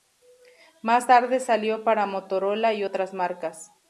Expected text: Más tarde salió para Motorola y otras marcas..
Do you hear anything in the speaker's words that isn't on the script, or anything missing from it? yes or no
no